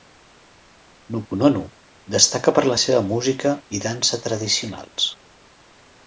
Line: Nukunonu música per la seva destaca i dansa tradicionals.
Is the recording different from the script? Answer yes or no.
yes